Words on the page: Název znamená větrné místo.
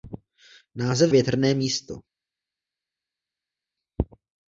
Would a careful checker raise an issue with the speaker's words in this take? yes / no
yes